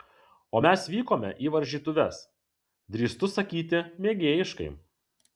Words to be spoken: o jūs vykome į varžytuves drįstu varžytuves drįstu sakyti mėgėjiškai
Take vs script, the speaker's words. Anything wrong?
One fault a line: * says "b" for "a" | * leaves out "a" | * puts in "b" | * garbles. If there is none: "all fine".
* says "mes" for "jūs"
* leaves out "varžytuves drįstu"